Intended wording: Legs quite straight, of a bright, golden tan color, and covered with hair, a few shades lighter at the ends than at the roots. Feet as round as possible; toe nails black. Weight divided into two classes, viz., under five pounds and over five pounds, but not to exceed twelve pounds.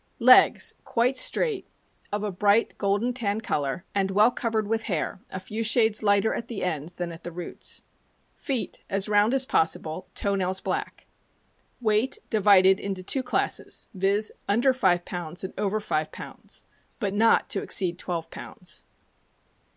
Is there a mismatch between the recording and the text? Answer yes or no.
yes